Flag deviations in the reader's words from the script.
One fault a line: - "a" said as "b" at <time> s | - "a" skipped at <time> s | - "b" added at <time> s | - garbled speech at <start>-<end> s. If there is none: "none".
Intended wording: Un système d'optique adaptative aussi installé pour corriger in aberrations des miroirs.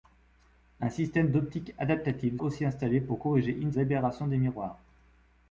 none